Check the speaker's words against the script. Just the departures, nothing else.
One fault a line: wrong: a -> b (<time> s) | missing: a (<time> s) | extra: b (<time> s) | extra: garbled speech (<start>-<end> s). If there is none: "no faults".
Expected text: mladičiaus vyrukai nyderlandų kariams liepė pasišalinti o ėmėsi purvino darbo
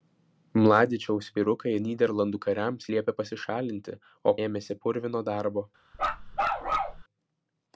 no faults